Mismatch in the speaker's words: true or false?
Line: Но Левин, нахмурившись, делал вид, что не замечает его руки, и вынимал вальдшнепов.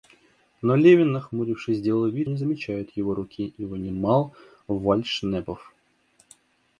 true